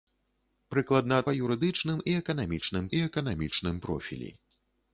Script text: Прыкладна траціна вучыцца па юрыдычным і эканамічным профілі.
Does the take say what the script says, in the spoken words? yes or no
no